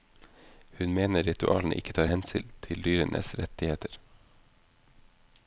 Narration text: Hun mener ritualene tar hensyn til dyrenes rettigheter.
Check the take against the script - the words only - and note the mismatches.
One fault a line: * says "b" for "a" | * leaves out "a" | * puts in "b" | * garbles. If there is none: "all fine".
* puts in "ikke"